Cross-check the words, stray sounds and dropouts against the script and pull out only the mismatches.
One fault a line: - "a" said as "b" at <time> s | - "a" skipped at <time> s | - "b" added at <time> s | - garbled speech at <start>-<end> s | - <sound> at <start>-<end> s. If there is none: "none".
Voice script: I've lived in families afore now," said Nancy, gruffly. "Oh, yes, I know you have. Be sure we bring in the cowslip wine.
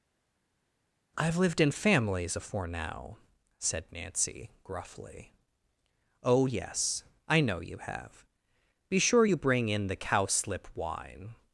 - "we" said as "you" at 9.2 s